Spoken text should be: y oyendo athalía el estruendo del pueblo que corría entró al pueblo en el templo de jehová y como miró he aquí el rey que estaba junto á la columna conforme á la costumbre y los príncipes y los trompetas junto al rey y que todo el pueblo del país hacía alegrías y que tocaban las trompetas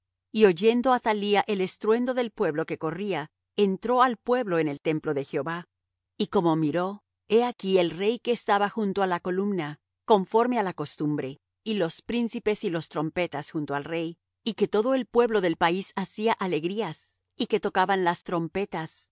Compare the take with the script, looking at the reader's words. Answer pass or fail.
pass